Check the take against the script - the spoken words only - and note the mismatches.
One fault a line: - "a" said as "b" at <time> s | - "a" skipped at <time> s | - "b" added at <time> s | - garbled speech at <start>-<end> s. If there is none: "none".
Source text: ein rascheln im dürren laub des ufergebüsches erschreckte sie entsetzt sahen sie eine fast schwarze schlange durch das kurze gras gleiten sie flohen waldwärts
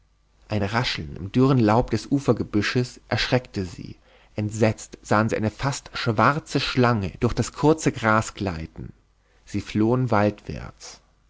none